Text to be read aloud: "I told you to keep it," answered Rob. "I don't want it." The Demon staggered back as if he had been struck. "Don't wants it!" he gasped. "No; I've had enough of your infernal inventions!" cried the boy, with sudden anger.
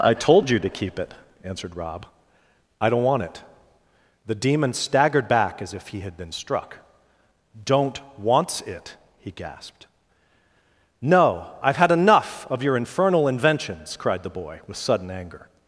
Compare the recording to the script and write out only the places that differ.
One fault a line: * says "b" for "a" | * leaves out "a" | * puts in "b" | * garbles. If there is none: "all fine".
all fine